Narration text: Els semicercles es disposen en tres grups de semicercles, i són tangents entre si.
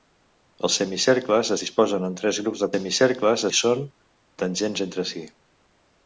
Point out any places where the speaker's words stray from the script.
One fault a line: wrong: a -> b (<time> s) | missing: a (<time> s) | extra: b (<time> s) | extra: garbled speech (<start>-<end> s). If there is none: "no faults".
no faults